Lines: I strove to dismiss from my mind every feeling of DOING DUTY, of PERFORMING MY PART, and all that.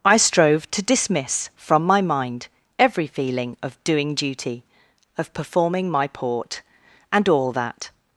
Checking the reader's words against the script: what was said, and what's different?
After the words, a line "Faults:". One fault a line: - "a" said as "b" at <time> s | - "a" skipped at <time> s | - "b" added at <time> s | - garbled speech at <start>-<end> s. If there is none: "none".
I strove to dismiss from my mind every feeling of DOING DUTY, of PERFORMING MY Port, and all that.
Faults:
- "PART" said as "Port" at 6.1 s